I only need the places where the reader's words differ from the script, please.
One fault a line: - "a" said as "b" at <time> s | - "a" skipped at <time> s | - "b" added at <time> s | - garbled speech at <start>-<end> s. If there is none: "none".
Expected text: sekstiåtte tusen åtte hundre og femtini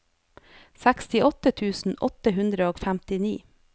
none